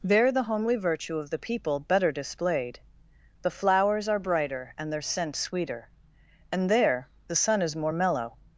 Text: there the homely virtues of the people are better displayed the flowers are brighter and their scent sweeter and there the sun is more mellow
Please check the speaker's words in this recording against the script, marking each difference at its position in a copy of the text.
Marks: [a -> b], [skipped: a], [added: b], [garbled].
there the homely [virtues -> virtue] of the people [skipped: are] better displayed the flowers are brighter and their scent sweeter and there the sun is more mellow